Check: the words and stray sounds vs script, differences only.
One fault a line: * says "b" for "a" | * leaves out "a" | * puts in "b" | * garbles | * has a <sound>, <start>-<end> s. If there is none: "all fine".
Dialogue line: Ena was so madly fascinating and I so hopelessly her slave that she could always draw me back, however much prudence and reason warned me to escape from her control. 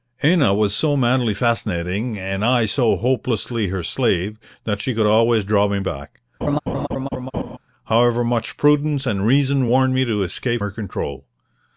* has a laugh, 6.4-7.6 s
* leaves out "from"